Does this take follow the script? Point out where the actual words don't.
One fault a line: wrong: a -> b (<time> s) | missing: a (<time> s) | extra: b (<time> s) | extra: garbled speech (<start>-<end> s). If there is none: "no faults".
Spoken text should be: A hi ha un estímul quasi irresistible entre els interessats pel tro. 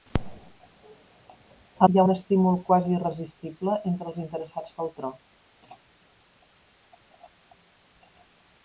no faults